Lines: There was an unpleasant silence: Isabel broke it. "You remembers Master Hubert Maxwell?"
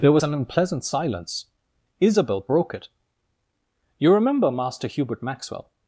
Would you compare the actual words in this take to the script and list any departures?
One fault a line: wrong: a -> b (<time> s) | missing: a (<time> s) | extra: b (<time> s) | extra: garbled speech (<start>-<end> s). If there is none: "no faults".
wrong: remembers -> remember (4.1 s)